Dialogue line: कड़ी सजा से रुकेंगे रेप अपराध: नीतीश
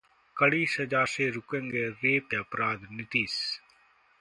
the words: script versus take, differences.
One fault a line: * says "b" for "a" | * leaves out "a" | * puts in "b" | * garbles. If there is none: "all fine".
all fine